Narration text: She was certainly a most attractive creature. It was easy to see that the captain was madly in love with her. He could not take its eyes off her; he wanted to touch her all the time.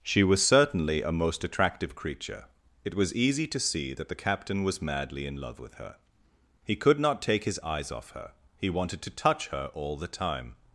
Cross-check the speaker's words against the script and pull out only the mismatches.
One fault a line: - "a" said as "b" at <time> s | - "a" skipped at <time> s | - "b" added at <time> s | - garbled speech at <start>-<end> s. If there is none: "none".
- "its" said as "his" at 7.4 s